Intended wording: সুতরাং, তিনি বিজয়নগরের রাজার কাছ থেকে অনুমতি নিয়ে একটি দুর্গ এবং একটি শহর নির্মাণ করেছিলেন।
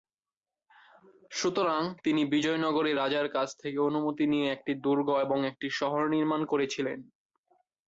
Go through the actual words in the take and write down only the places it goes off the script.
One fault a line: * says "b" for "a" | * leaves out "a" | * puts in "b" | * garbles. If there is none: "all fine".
all fine